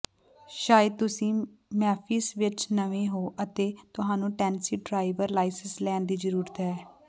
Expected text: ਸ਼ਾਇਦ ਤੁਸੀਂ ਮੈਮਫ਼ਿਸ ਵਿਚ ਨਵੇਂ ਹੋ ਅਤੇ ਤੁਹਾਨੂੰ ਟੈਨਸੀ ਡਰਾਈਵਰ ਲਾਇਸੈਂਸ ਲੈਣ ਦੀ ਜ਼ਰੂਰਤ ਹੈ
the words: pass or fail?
pass